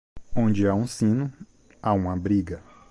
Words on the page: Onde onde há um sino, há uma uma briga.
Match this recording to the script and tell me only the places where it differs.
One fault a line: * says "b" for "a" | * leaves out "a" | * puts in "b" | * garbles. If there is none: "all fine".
* leaves out "onde"
* leaves out "uma"